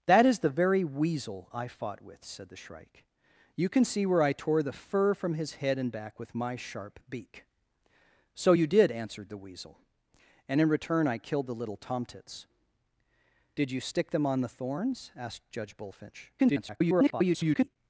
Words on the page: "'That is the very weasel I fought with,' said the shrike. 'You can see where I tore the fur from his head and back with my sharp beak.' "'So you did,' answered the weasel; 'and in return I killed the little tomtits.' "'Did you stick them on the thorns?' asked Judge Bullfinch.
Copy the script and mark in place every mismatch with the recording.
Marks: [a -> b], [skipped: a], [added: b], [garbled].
"'That is the very weasel I fought with,' said the shrike. 'You can see where I tore the fur from his head and back with my sharp beak.' "'So you did,' answered the weasel; 'and in return I killed the little tomtits.' "'Did you stick them on the thorns?' asked Judge Bullfinch. [garbled]